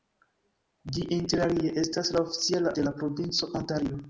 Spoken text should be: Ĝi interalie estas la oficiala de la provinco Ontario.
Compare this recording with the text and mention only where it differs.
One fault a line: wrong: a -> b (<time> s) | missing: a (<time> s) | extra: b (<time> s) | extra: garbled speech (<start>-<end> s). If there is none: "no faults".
no faults